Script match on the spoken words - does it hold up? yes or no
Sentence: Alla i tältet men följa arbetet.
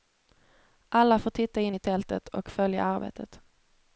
no